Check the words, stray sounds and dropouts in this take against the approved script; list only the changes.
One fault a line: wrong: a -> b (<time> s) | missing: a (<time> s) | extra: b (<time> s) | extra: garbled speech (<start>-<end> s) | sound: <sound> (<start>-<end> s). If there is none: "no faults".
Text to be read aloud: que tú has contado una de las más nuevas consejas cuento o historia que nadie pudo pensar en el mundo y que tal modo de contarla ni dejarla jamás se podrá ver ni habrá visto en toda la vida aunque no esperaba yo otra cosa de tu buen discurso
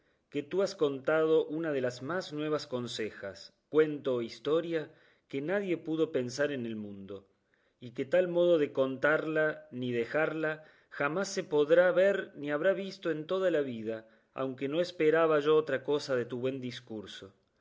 no faults